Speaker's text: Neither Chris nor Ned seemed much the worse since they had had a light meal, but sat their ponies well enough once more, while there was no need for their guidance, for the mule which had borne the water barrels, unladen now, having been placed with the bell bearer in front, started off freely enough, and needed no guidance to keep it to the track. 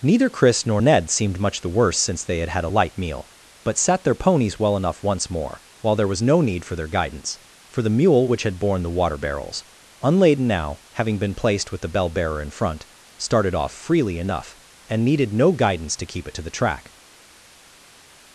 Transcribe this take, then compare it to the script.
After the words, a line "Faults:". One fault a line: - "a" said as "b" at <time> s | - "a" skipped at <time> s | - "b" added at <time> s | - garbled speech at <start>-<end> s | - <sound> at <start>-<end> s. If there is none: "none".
Neither Chris nor Ned seemed much the worse since they had had a light meal, but sat their ponies well enough once more, while there was no need for their guidance, for the mule which had borne the water barrels, unladen now, having been placed with the bell bearer in front, started off freely enough, and needed no guidance to keep it to the track.
Faults:
none